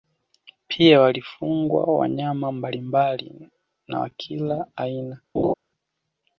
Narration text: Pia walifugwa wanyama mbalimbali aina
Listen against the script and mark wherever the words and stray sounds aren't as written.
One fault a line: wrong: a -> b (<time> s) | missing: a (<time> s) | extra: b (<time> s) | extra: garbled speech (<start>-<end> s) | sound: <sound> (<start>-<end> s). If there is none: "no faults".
extra: na wa kila (3.9 s)
sound: laugh (5.3-5.5 s)